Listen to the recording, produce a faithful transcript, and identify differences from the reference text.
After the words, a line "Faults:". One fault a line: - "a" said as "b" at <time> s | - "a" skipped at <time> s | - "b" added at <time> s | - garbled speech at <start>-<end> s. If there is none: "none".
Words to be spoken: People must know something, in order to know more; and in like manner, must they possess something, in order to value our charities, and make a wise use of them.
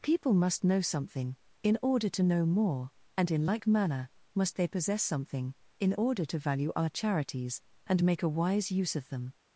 People must know something, in order to know more; and in like manner, must they possess something, in order to value our charities, and make a wise use of them.
Faults:
none